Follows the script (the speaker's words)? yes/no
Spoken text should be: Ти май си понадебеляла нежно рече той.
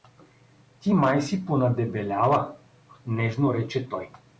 yes